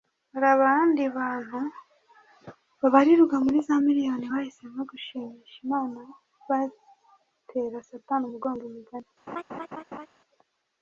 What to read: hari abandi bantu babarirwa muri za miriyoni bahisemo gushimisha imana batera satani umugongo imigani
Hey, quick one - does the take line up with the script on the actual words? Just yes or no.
yes